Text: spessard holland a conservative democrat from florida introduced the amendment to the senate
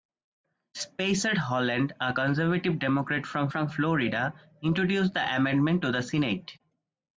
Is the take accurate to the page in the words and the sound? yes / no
no